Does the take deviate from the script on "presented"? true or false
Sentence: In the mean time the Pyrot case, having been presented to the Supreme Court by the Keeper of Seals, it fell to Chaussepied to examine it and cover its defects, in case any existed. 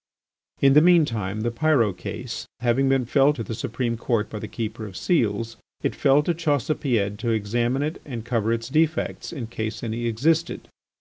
true